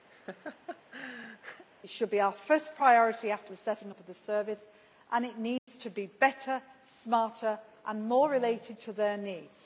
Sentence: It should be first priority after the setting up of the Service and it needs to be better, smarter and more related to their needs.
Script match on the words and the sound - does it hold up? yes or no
no